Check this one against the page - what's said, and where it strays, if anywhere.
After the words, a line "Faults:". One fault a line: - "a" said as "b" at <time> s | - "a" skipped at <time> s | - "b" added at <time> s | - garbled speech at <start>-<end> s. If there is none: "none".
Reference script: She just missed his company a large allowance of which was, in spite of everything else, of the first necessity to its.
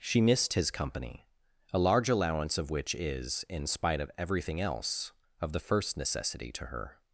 She missed his company a large allowance of which is, in spite of everything else, of the first necessity to her.
Faults:
- "just" skipped at 0.2 s
- "was" said as "is" at 3.0 s
- "its" said as "her" at 6.6 s